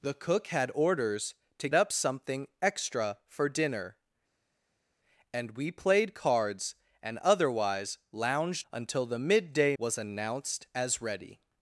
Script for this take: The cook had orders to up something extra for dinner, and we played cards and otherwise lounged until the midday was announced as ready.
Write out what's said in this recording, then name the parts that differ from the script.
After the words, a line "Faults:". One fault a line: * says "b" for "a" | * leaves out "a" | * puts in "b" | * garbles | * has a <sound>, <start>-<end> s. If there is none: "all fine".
The cook had orders to up something extra for dinner, and we played cards and otherwise lounged until the midday was announced as ready.
Faults:
all fine